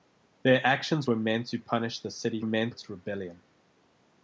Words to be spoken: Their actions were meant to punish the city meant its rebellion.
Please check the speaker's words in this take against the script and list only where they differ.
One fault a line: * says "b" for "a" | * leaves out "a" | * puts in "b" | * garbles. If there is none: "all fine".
all fine